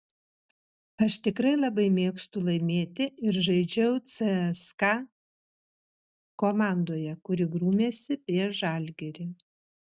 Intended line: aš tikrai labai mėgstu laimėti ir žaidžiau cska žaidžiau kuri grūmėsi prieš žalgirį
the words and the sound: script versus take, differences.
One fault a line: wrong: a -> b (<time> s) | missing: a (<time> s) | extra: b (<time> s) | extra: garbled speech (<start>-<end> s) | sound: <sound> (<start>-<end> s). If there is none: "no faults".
wrong: žaidžiau -> komandoje (6.4 s)